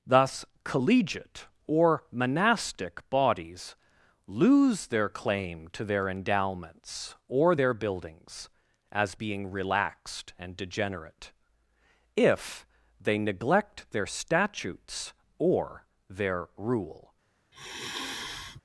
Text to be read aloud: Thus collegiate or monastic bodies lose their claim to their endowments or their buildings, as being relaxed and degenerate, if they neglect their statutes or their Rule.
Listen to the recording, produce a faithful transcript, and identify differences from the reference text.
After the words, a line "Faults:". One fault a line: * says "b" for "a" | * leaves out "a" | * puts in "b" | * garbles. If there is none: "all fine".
Thus collegiate or monastic bodies lose their claim to their endowments or their buildings, as being relaxed and degenerate, if they neglect their statutes or their Rule.
Faults:
all fine